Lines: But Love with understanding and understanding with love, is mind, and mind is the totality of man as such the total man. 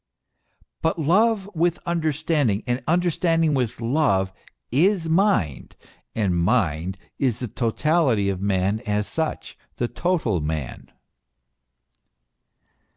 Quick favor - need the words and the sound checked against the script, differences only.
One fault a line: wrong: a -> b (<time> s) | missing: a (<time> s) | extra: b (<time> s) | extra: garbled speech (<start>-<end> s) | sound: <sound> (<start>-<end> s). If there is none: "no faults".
no faults